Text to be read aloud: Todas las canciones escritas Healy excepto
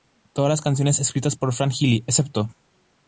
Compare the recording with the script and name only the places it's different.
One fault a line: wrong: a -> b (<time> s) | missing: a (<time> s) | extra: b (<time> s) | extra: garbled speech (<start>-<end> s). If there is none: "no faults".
extra: por Fran (1.3 s)